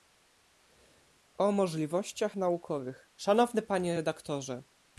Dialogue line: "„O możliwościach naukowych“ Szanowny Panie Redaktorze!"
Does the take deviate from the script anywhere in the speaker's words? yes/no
no